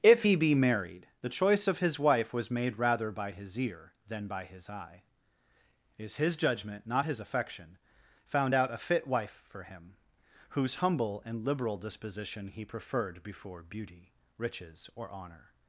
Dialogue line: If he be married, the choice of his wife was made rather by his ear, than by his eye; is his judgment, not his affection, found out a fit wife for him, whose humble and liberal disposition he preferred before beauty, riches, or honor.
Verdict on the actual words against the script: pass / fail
pass